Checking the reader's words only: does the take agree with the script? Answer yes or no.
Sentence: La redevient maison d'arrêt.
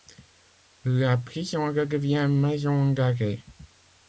no